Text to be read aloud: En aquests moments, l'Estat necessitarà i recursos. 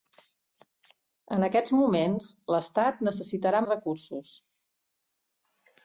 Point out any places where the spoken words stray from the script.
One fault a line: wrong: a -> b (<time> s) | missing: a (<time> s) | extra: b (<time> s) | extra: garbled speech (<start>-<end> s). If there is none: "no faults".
no faults